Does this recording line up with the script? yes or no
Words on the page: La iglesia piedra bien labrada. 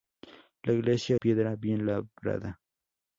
yes